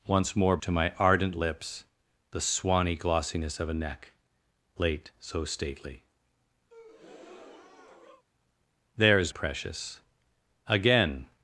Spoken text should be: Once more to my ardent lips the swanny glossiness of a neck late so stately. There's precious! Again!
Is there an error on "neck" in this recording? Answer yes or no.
no